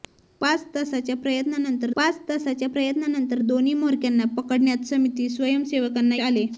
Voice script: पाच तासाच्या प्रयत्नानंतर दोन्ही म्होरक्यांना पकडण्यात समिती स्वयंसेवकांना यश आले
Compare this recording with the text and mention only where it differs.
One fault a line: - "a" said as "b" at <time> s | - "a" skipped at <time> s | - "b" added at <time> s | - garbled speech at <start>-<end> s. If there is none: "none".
- "पाच तासाच्या प्रयत्नानंतर" added at 2.0 s
- "यश" skipped at 6.2 s